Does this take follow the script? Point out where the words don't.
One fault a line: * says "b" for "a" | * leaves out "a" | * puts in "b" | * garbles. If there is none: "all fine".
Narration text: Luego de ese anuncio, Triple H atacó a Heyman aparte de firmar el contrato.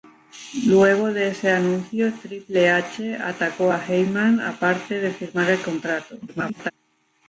* garbles